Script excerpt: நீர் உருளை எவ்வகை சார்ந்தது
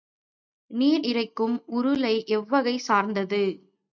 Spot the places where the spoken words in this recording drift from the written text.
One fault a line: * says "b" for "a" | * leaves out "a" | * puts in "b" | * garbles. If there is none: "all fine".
* puts in "இறைக்கும்"